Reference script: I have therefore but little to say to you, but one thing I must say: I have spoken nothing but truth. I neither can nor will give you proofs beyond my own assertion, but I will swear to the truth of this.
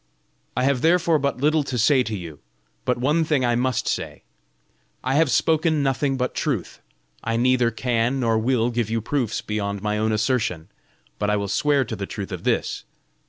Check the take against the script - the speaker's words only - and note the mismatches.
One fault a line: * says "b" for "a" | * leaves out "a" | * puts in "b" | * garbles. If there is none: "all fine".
all fine